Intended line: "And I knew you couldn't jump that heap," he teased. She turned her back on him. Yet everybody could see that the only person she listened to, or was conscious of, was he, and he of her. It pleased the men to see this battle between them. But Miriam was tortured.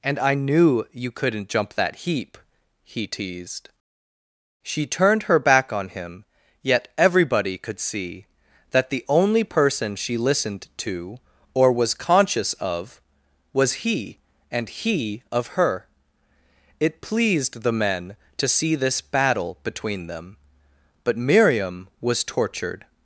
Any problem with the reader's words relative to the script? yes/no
no